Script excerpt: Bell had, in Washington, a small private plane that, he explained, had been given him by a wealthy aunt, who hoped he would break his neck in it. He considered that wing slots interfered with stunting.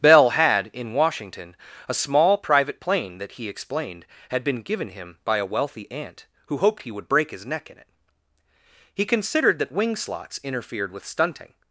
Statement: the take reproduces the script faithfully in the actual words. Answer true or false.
true